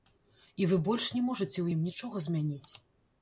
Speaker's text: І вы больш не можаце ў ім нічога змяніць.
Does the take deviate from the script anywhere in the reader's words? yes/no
no